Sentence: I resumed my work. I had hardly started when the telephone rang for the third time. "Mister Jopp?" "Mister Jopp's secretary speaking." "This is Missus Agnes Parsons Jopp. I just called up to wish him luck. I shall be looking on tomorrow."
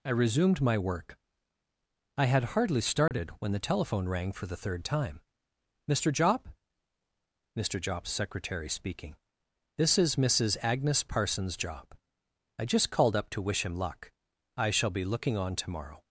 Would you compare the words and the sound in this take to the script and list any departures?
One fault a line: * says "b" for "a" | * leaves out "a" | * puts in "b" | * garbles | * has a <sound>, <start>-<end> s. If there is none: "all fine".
* has a dropout, 3.1-3.1 s